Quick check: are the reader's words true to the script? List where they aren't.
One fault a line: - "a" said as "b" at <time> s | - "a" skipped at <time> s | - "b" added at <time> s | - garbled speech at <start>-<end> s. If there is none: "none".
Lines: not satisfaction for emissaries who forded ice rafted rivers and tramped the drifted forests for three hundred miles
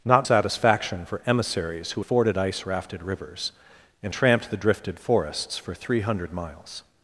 none